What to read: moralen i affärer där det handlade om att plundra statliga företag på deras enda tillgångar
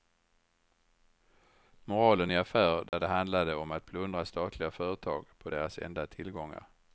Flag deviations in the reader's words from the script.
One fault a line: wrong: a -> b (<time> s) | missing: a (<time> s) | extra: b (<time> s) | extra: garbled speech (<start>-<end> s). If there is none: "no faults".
no faults